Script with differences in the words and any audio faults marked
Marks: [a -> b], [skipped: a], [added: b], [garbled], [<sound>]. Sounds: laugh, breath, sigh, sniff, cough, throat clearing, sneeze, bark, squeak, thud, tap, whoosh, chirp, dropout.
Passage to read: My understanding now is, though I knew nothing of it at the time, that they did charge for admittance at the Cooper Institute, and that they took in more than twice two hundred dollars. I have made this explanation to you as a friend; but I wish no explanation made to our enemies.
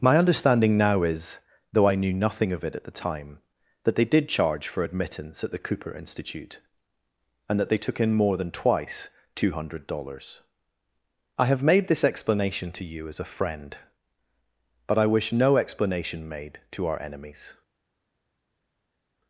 My understanding now is, though I knew nothing of it at the time, that they did charge for admittance at the Cooper Institute, and that they took in more than twice two hundred dollars. I have made this explanation to you as a friend; but I wish no explanation made to our enemies.